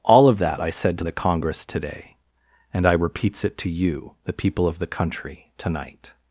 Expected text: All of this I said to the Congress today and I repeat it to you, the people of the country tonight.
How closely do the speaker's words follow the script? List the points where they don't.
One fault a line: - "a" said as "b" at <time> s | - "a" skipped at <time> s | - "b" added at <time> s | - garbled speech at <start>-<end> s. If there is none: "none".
- "this" said as "that" at 0.4 s
- "repeat" said as "repeats" at 2.9 s